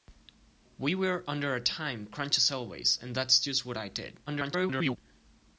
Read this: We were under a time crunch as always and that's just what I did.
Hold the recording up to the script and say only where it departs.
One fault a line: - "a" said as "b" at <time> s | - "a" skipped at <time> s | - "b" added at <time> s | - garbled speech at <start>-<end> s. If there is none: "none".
- garbled speech at 4.3-5.0 s